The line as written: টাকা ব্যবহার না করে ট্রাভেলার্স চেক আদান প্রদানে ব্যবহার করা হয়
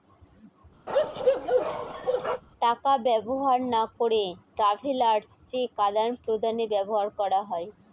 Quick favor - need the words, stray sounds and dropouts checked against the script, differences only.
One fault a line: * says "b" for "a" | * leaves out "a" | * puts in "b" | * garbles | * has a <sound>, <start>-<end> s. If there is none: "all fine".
* has a bark, 0.9-2.4 s